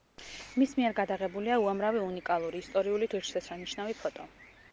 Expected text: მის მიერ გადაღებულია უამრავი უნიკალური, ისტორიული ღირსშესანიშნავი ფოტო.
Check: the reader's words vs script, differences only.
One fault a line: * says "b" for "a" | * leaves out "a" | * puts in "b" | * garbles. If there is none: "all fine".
all fine